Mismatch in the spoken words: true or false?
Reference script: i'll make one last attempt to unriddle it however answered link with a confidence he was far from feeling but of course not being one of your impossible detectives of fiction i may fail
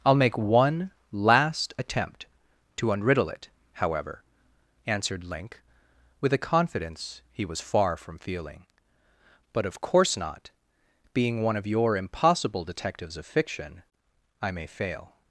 false